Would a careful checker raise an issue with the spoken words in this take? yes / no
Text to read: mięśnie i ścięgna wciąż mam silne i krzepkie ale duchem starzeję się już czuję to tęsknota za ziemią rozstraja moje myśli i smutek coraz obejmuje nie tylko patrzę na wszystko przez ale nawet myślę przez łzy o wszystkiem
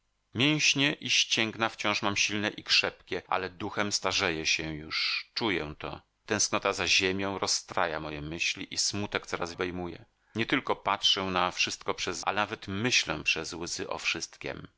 no